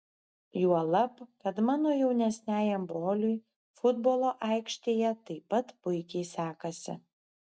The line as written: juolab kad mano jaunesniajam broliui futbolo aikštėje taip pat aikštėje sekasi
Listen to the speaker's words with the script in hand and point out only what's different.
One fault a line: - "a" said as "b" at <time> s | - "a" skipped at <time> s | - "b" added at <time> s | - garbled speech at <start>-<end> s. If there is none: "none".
- "aikštėje" said as "puikiai" at 5.9 s